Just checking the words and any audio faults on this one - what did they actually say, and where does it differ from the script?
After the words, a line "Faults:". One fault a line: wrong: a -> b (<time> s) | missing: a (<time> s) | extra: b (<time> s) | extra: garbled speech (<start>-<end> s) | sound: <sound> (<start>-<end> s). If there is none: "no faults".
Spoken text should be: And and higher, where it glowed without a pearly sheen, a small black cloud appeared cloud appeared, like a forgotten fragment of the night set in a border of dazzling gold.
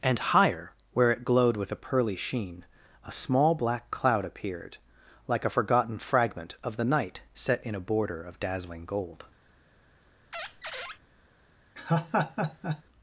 And higher, where it glowed with a pearly sheen, a small black cloud appeared, like a forgotten fragment of the night set in a border of dazzling gold.
Faults:
missing: and (0.2 s)
wrong: without -> with (1.6 s)
missing: cloud appeared (4.8 s)
sound: squeak (10.3-11.0 s)
sound: laugh (11.8-12.8 s)